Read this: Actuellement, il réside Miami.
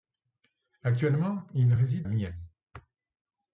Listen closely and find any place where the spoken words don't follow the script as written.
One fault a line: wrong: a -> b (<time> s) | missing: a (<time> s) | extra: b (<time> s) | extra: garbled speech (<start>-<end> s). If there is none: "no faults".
no faults